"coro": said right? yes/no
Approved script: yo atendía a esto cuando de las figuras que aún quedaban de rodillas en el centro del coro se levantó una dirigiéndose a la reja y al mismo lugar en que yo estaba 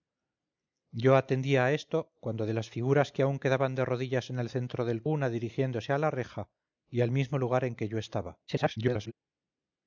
no